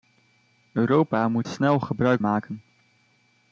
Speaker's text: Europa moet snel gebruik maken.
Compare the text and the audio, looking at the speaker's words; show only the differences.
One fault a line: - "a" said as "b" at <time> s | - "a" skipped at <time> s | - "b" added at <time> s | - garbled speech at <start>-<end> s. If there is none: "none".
none